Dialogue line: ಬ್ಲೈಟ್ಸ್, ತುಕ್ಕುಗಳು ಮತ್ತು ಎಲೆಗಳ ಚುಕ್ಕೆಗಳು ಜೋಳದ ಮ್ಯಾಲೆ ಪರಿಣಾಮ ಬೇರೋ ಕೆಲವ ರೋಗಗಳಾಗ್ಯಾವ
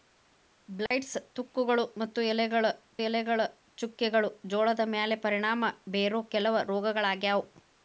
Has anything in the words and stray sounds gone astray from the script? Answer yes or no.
yes